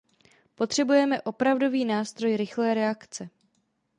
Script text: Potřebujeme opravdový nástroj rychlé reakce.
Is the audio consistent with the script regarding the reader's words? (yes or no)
yes